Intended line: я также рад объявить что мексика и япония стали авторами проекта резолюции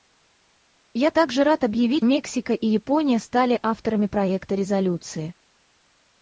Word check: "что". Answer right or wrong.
wrong